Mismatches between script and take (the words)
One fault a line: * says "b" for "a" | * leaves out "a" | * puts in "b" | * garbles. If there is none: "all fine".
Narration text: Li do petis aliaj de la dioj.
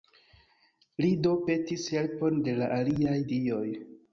* says "helpon" for "aliaj"
* puts in "aliaj"